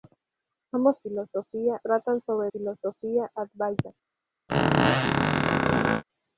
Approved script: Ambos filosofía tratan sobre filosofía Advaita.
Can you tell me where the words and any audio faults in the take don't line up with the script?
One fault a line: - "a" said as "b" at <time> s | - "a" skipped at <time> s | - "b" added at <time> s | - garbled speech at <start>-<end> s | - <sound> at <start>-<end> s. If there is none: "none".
- squeak at 4.5-6.0 s